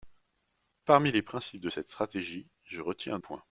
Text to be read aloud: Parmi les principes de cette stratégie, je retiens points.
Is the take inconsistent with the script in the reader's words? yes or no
no